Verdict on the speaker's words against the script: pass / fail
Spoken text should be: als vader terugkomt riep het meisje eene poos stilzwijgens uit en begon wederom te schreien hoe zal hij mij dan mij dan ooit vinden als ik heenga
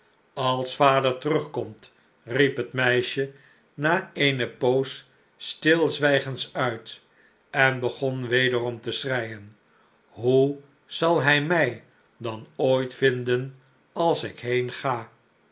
fail